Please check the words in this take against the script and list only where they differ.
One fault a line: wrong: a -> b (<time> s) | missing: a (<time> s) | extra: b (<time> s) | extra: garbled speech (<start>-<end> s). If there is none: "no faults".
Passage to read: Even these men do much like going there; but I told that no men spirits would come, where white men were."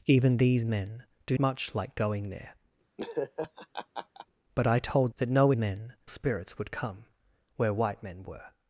no faults